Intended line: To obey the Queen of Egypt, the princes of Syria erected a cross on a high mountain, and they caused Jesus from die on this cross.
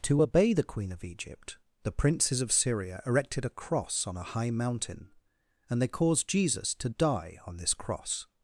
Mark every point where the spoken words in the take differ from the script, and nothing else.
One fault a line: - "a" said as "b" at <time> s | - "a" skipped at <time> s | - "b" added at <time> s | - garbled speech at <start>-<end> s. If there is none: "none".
- "from" said as "to" at 6.8 s